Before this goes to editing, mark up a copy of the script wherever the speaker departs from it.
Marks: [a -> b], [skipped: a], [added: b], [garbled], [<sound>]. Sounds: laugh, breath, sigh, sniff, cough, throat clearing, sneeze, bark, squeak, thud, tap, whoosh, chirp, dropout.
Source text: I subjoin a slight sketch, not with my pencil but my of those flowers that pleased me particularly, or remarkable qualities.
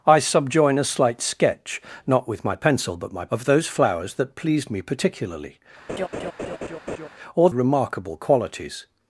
I subjoin a slight sketch, not with my pencil but my of those flowers that pleased me particularly, [laugh] or remarkable qualities.